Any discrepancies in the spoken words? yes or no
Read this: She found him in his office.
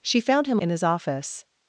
no